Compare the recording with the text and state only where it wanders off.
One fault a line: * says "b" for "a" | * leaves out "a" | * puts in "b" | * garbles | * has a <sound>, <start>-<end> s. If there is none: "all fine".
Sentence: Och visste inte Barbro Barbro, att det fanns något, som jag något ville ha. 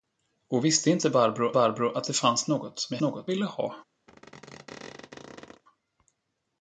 * has a squeak, 4.1-5.6 s